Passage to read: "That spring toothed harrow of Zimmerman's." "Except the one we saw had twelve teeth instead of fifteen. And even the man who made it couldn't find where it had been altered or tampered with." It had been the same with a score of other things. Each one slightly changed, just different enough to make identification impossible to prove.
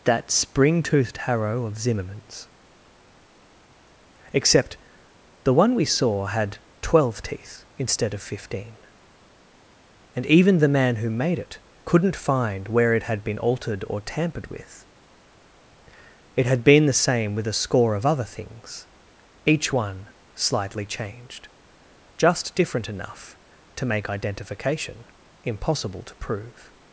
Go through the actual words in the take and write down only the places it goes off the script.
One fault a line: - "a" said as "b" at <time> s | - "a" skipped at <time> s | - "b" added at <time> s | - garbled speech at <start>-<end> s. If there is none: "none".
none